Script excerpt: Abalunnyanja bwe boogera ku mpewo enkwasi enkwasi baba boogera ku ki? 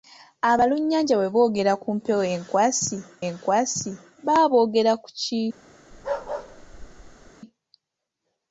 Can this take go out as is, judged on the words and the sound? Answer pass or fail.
fail